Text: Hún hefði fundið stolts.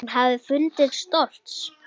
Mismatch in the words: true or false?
false